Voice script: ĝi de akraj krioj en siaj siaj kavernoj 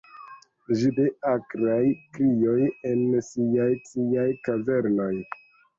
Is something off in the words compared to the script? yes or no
no